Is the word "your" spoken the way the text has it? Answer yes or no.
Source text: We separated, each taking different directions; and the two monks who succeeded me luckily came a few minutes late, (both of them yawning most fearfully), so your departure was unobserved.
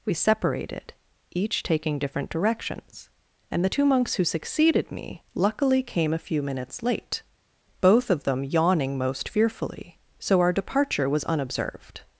no